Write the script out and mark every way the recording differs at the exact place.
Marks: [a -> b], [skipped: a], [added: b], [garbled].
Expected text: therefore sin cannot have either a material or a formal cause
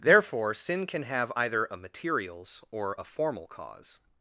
therefore sin [cannot -> can] have either a [material -> materials] or a formal cause